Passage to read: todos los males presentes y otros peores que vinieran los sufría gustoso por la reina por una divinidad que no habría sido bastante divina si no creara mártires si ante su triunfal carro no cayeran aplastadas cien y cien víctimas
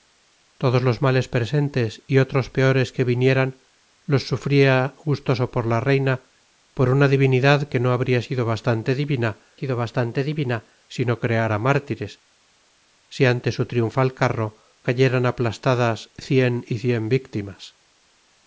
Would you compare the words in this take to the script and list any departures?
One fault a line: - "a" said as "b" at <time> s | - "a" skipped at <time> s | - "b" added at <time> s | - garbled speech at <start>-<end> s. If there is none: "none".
- "sido bastante divina" added at 9.5 s
- "no" skipped at 14.6 s